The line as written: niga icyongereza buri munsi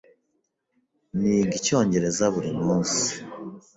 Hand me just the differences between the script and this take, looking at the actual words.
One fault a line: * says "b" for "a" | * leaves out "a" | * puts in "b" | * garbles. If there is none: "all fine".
all fine